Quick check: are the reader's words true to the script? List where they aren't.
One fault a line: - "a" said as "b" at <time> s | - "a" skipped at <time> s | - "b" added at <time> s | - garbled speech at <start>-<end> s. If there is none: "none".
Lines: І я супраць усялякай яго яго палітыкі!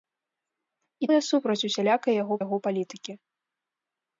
none